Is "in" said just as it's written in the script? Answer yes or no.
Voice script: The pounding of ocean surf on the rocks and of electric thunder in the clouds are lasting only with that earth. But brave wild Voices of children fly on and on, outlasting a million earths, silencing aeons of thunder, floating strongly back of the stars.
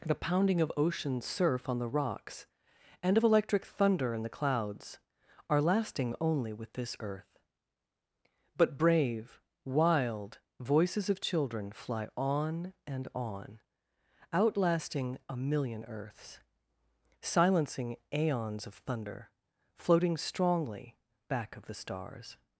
yes